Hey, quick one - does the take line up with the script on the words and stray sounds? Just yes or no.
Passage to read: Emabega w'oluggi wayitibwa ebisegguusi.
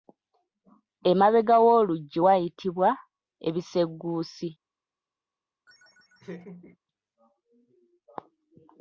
no